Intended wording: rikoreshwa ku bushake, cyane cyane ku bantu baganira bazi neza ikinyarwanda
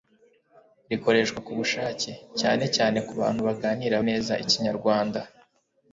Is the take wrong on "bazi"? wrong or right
wrong